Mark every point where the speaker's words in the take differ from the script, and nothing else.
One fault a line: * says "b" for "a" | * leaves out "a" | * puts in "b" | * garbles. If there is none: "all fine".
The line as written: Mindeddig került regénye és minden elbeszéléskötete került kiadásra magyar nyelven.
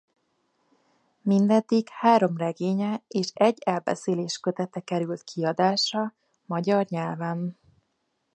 * says "három" for "került"
* says "egy" for "minden"